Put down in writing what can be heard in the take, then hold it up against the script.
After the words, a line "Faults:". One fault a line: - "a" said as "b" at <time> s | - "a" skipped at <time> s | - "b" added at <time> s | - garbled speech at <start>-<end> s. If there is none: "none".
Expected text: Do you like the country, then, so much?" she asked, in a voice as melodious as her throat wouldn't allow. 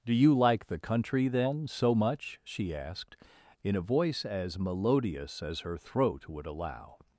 Do you like the country, then, so much?" she asked, in a voice as melodious as her throat would allow.
Faults:
- "wouldn't" said as "would" at 6.3 s